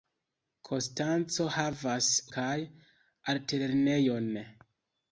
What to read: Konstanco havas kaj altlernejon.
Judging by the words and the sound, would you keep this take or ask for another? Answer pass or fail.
pass